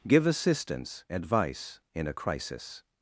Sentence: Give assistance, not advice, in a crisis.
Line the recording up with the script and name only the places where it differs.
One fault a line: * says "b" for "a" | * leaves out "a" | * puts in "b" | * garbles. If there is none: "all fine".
* leaves out "not"